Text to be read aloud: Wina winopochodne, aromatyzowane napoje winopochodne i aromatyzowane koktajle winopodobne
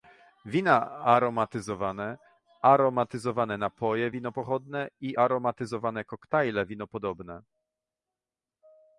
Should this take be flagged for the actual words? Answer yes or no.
yes